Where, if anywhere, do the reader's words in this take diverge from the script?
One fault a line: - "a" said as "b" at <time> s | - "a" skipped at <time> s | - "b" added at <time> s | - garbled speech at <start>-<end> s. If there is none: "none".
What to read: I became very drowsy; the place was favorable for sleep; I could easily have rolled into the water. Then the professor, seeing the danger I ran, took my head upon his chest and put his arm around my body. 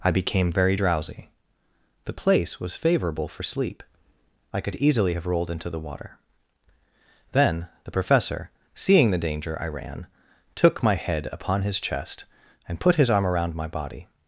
none